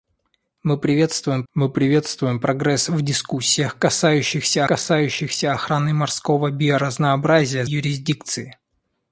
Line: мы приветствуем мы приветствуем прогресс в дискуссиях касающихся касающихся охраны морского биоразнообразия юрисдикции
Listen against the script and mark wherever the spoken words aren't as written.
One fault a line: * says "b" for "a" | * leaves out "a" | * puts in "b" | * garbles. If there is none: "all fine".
all fine